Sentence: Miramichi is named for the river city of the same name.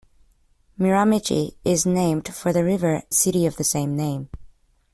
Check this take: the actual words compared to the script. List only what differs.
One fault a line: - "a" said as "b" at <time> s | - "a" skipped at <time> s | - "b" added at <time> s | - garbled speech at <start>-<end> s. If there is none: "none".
none